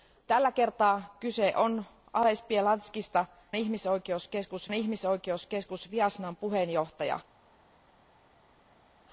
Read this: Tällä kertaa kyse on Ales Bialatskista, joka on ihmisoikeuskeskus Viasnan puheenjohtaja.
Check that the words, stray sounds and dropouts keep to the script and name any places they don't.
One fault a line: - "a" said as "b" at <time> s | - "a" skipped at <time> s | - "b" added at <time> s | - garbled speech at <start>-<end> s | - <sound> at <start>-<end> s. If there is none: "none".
- "joka" said as "ihmisoikeuskeskus" at 3.6 s